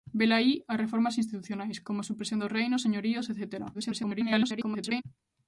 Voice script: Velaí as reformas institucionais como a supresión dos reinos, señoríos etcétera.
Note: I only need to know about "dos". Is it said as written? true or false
true